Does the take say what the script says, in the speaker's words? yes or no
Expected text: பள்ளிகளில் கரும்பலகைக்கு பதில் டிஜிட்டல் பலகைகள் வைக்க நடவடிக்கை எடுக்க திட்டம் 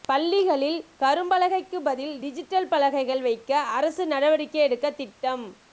no